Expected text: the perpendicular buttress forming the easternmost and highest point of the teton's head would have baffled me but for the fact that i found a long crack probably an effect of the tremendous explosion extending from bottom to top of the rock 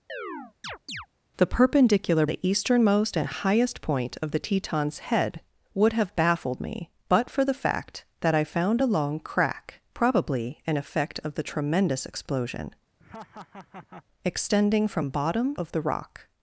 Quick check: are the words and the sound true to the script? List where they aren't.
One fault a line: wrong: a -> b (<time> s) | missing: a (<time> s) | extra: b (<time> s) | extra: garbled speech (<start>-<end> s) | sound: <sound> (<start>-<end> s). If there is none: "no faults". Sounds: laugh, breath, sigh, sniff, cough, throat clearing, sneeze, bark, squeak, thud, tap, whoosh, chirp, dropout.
sound: chirp (0.1-1.1 s)
missing: buttress forming (2.2 s)
sound: laugh (13.0-14.0 s)
missing: to top (15.6 s)